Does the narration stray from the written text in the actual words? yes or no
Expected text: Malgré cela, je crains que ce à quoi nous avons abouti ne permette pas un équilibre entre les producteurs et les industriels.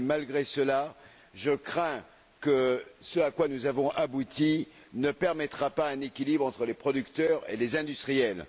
no